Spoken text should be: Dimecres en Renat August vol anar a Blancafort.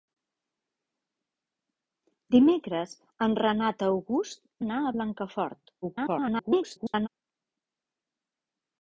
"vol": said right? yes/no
no